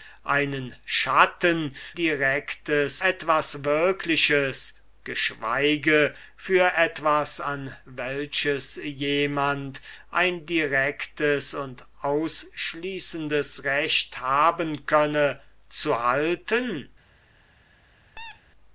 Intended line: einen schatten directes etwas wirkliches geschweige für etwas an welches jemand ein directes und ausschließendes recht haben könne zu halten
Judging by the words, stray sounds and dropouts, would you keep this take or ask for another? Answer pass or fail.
fail